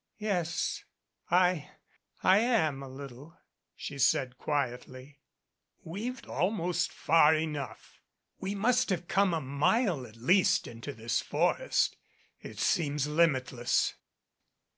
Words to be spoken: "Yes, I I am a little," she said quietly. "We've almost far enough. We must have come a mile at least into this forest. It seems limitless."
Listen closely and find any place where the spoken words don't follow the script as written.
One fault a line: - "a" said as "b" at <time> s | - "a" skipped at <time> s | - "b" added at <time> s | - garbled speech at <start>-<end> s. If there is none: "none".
none